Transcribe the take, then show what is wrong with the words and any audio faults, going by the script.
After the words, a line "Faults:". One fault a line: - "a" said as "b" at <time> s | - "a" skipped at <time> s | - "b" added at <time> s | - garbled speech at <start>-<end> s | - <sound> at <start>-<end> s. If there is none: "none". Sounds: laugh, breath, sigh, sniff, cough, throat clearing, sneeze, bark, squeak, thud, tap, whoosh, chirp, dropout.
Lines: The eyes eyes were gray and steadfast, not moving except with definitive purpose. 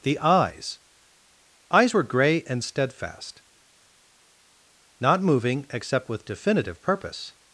The eyes eyes were gray and steadfast, not moving except with definitive purpose.
Faults:
none